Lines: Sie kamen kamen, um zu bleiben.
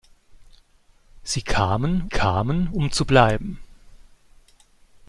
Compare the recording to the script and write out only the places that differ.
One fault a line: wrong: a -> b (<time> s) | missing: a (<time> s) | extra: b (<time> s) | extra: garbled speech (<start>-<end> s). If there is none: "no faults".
no faults